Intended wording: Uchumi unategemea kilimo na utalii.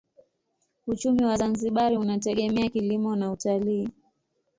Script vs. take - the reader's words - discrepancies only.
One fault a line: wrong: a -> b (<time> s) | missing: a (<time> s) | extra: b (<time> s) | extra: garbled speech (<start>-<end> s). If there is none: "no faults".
extra: wa Zanzibar (1.2 s)